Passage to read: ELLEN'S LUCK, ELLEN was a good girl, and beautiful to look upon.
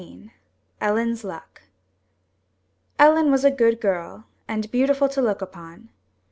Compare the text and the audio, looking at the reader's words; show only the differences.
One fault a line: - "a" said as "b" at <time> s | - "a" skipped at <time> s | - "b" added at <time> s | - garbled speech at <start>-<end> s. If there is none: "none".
none